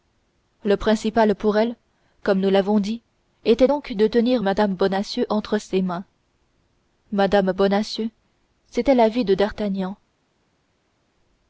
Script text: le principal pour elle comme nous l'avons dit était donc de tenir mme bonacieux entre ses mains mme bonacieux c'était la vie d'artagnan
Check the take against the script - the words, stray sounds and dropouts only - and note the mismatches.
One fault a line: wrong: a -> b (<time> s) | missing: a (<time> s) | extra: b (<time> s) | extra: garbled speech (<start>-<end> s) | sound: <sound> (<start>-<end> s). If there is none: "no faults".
extra: de (9.2 s)